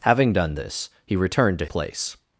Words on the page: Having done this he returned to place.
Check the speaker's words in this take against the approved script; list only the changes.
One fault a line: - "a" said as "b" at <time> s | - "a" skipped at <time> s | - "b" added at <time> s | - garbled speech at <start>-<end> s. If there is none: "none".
none